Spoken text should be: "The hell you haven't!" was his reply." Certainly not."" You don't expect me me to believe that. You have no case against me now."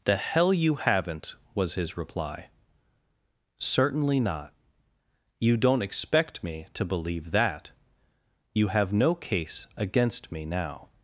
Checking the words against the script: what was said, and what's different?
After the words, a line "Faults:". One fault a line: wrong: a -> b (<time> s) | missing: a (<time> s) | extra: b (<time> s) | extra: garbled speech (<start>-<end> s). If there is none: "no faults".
"The hell you haven't!" was his reply." Certainly not."" You don't expect me to believe that. You have no case against me now."
Faults:
missing: me (6.7 s)